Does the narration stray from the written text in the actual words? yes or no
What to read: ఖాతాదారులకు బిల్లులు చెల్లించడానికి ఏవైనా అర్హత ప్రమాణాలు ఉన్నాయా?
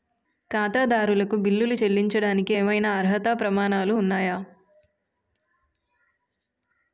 no